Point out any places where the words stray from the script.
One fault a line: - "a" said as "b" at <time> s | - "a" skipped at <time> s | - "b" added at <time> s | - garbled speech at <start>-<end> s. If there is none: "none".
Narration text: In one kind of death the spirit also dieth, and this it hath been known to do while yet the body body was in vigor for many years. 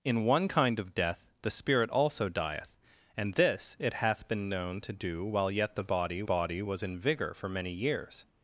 none